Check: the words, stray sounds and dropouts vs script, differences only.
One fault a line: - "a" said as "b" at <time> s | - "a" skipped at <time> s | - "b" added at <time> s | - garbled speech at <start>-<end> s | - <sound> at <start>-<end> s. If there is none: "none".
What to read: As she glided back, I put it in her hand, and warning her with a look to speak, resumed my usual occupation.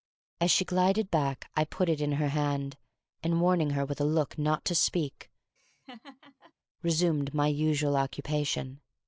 - "not" added at 4.4 s
- laugh at 5.6-6.5 s